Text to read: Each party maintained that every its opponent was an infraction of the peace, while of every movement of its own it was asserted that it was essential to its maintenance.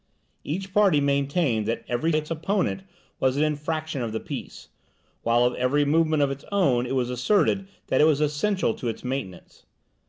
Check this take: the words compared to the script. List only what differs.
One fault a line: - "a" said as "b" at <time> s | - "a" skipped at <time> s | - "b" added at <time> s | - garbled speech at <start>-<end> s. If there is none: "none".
none